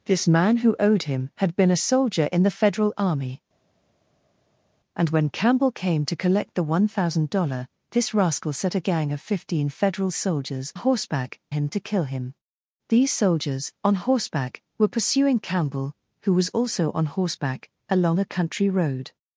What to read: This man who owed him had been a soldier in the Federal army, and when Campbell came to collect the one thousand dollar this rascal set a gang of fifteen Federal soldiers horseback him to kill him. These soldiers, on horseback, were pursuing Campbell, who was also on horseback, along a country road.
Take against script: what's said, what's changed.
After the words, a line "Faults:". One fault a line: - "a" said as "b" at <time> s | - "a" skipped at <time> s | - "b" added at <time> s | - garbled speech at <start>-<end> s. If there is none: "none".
This man who owed him had been a soldier in the Federal army, and when Campbell came to collect the one thousand dollar this rascal set a gang of fifteen Federal soldiers horseback him to kill him. These soldiers, on horseback, were pursuing Campbell, who was also on horseback, along a country road.
Faults:
none